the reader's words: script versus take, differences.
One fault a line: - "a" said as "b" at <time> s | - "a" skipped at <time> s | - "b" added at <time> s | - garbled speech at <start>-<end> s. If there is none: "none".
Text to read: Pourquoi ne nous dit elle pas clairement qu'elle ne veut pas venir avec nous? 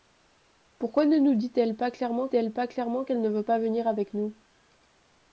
- "elle pas clairement" added at 2.3 s